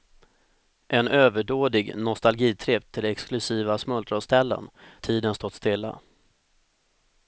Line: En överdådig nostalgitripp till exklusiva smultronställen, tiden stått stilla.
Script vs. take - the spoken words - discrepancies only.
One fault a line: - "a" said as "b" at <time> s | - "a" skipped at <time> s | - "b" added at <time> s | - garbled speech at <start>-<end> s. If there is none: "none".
none